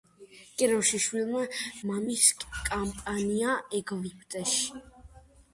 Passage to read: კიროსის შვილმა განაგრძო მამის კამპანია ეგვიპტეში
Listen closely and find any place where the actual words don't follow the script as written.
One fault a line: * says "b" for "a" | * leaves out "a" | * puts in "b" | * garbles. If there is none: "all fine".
* leaves out "განაგრძო"